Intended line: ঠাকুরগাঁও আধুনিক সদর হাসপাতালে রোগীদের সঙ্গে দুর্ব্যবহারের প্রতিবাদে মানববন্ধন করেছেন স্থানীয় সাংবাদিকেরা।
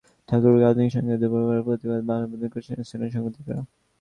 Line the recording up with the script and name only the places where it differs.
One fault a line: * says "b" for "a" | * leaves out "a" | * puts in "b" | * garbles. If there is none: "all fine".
* leaves out "সদর হাসপাতালে রোগীদের"